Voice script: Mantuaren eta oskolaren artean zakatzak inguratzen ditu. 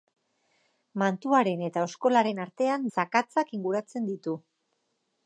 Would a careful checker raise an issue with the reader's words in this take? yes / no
no